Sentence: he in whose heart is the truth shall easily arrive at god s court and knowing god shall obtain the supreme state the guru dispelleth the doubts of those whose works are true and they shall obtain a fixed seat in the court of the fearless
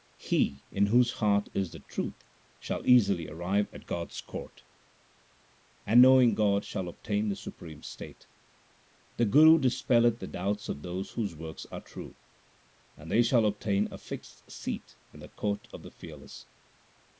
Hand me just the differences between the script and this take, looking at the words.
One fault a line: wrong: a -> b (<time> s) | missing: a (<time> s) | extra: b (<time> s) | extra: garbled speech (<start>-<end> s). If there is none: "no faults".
no faults